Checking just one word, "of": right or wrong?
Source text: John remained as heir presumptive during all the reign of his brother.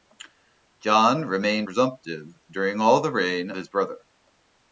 wrong